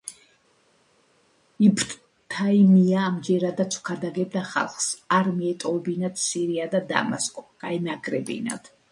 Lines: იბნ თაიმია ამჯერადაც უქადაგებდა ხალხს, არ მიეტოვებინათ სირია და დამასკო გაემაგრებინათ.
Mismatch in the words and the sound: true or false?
false